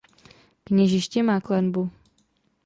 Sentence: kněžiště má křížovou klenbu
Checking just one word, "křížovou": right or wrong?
wrong